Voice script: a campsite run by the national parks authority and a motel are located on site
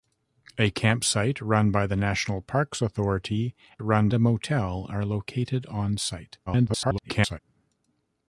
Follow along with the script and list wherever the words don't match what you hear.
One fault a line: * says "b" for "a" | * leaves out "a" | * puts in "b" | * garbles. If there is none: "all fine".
* says "run" for "and"
* garbles